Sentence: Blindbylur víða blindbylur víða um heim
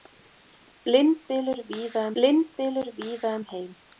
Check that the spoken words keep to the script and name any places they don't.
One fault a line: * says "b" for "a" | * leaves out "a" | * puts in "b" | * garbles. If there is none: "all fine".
all fine